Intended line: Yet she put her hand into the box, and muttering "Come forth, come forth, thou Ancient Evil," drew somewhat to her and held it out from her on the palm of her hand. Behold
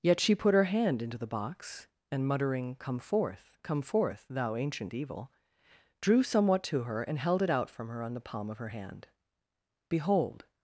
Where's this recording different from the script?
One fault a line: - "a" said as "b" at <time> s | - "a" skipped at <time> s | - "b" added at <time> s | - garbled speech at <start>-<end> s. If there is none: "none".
none